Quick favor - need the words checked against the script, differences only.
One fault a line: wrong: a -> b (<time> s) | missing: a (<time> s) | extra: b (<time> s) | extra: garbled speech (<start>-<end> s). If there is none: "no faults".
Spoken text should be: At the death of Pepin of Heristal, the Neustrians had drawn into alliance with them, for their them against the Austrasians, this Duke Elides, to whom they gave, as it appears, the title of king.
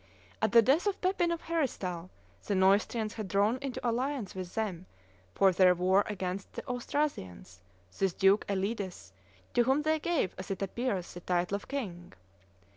wrong: them -> war (5.7 s)